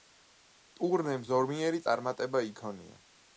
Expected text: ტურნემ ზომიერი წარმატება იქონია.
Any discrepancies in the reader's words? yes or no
no